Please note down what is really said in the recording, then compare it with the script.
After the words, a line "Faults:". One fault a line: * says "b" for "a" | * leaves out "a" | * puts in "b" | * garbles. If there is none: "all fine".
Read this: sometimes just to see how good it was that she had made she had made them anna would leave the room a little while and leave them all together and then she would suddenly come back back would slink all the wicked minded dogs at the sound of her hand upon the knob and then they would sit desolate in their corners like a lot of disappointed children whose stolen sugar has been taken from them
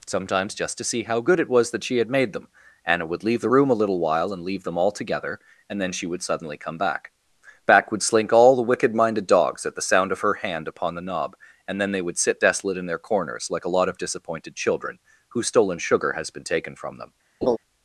sometimes just to see how good it was that she had made them anna would leave the room a little while and leave them all together and then she would suddenly come back back would slink all the wicked minded dogs at the sound of her hand upon the knob and then they would sit desolate in their corners like a lot of disappointed children whose stolen sugar has been taken from them
Faults:
* leaves out "she had made"